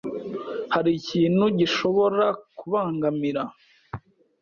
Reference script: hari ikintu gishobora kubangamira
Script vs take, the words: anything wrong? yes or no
no